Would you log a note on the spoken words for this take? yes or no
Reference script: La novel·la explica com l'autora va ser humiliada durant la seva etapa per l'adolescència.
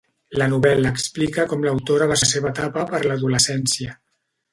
yes